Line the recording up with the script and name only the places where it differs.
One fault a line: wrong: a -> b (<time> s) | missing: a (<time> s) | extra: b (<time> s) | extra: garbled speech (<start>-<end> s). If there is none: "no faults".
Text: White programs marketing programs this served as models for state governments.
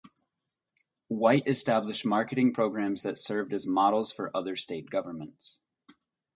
wrong: programs -> established (1.5 s)
wrong: this -> that (3.0 s)
extra: other (4.4 s)